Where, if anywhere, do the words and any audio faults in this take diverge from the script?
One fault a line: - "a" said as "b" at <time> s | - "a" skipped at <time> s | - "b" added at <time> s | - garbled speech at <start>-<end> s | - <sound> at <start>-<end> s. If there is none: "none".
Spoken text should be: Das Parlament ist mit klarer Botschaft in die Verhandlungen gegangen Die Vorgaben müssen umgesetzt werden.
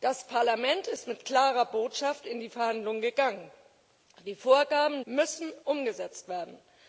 none